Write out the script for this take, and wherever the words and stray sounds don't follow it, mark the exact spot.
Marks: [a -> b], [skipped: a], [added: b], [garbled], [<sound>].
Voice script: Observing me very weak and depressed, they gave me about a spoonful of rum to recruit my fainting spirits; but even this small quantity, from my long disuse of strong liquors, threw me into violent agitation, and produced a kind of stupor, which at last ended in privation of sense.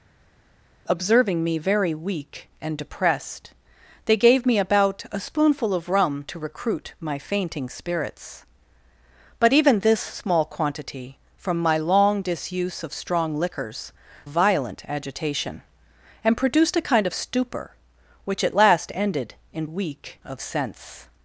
Observing me very weak and depressed, they gave me about a spoonful of rum to recruit my fainting spirits; but even this small quantity, from my long disuse of strong liquors, [skipped: threw me into] violent agitation, and produced a kind of stupor, which at last ended in [privation -> weak] of sense.